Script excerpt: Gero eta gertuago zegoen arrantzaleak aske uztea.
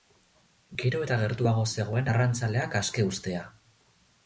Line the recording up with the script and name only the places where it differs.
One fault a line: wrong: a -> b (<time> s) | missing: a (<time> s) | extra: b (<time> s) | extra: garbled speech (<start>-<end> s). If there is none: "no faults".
no faults